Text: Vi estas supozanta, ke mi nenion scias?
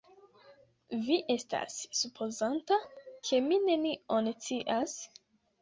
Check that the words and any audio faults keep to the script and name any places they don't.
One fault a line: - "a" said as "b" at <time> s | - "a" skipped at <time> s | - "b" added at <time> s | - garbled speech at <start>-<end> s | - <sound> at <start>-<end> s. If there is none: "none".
none